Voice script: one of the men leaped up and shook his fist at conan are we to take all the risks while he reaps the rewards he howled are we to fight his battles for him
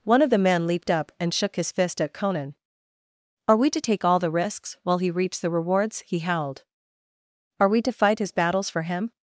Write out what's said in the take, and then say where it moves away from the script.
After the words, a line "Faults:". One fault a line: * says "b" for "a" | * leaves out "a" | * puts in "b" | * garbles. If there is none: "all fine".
one of the men leaped up and shook his fist at conan are we to take all the risks while he reaps the rewards he howled are we to fight his battles for him
Faults:
all fine